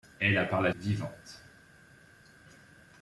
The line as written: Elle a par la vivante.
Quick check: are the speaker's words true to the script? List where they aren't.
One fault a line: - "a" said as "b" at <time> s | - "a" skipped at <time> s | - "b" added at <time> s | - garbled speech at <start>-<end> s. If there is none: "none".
none